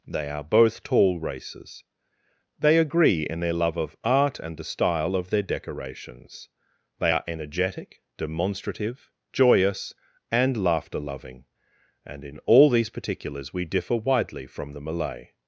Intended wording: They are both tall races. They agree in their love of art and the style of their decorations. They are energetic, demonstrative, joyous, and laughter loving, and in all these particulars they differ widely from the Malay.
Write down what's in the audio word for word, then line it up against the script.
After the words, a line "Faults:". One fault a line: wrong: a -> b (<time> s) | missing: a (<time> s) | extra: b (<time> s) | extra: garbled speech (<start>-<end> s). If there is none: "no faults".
They are both tall races. They agree in their love of art and the style of their decorations. They are energetic, demonstrative, joyous, and laughter loving, and in all these particulars we differ widely from the Malay.
Faults:
wrong: they -> we (13.5 s)